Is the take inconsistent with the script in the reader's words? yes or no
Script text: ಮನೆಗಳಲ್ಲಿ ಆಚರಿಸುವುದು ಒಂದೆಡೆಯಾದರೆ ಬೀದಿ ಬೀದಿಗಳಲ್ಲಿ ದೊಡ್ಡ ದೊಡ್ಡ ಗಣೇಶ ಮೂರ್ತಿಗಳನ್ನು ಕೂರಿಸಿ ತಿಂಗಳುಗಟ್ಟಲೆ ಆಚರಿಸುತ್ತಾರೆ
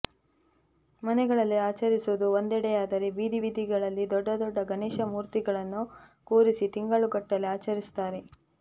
no